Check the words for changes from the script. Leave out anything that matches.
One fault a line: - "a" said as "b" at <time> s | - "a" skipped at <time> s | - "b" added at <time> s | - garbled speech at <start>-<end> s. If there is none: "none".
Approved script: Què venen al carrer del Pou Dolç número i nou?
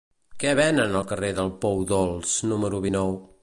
none